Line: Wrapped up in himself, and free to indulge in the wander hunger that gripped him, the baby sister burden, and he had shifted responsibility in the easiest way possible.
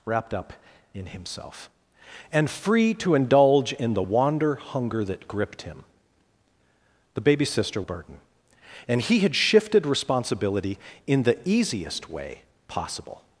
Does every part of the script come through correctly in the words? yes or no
yes